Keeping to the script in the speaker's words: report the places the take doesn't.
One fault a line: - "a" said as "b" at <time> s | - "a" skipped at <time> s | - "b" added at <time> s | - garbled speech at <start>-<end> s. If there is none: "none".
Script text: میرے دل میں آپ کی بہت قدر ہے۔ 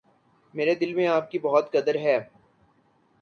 none